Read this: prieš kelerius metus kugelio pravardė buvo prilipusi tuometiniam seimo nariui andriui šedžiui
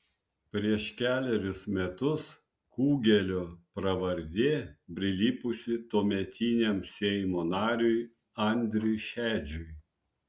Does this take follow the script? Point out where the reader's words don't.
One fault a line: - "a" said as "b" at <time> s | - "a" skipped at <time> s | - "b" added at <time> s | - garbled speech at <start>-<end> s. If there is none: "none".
- "buvo" skipped at 4.5 s